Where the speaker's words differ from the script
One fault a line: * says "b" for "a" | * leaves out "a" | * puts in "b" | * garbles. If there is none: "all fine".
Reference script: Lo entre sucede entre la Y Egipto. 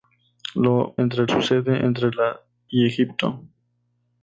all fine